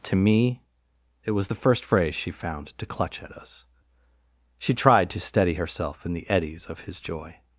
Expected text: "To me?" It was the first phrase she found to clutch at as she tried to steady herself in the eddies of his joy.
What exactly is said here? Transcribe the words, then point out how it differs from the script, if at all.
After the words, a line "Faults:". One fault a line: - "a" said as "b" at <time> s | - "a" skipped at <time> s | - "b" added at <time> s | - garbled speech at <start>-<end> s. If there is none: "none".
"To me?" It was the first phrase she found to clutch at us she tried to steady herself in the eddies of his joy.
Faults:
- "as" said as "us" at 3.3 s